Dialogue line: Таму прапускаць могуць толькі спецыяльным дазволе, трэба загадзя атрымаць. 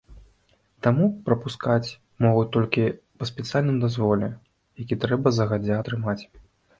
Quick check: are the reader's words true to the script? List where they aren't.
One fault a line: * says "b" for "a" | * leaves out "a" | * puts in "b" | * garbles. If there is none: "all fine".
* puts in "па"
* puts in "які"